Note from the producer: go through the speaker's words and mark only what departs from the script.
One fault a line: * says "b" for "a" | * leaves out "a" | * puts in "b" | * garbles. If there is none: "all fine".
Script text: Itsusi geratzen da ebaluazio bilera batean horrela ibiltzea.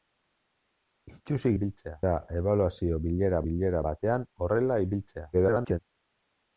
* says "ibiltzea" for "geratzen"
* puts in "bilera"
* garbles